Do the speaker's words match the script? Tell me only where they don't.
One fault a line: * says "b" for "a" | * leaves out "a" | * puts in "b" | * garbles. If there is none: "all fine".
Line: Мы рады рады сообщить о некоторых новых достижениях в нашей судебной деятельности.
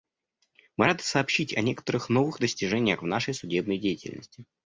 * leaves out "рады"